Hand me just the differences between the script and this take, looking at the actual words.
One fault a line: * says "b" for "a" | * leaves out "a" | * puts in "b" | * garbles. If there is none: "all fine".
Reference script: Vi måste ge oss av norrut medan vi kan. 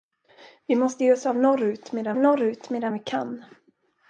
* puts in "norrut medan"